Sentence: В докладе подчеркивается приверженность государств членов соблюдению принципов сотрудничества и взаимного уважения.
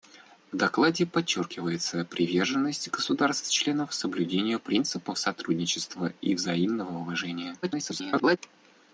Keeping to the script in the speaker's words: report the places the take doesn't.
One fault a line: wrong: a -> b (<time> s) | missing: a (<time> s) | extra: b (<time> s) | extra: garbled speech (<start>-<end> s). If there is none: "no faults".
extra: garbled speech (7.6-8.4 s)